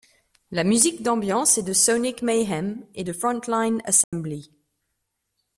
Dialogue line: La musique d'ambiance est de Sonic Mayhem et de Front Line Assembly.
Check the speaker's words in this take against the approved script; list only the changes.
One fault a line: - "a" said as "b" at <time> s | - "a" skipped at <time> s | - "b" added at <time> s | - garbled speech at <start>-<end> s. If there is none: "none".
none